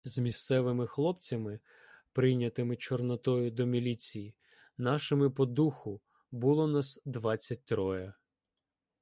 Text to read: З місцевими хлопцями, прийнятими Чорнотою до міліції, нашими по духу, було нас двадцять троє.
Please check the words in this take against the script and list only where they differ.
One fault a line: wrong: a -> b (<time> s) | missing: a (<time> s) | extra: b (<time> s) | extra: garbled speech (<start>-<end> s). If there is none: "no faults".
no faults